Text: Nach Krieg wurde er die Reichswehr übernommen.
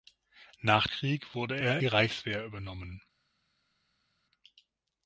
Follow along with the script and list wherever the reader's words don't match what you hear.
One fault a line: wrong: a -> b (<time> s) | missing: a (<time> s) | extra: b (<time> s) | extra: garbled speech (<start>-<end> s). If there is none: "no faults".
no faults